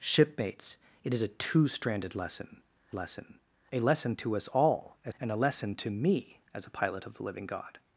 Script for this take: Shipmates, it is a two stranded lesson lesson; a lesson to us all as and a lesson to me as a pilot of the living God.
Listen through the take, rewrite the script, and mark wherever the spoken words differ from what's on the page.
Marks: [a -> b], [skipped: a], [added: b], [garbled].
Shipmates, it is a two stranded lesson lesson; a lesson to us all as and a lesson to me as a pilot of the living God.